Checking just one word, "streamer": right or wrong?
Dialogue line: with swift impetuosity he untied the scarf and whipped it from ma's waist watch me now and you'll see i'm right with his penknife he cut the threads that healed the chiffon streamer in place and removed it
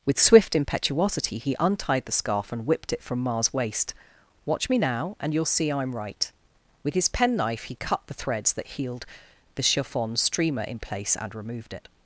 right